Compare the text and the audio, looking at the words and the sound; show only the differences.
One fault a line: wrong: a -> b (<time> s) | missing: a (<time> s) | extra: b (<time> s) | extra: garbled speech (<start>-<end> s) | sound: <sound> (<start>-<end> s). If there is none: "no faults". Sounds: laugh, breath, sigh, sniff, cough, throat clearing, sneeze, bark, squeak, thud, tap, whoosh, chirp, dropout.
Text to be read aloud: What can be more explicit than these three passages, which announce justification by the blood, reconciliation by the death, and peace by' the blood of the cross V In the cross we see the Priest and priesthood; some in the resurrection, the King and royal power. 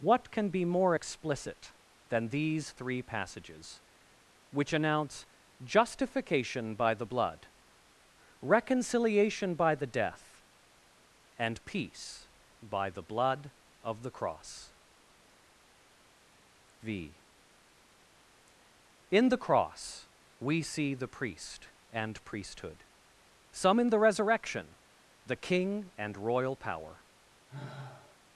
sound: sigh (27.5-28.2 s)